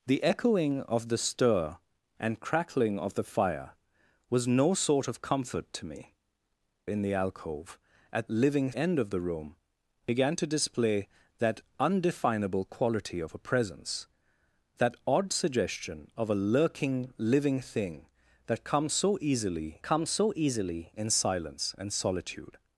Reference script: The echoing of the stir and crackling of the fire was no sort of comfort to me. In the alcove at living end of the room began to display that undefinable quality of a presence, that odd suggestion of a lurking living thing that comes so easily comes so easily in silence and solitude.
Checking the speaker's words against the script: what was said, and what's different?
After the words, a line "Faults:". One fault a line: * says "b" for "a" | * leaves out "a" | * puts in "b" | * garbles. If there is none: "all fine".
The echoing of the stir and crackling of the fire was no sort of comfort to me. In the alcove at living end of the room began to display that undefinable quality of a presence, that odd suggestion of a lurking living thing that comes so easily comes so easily in silence and solitude.
Faults:
all fine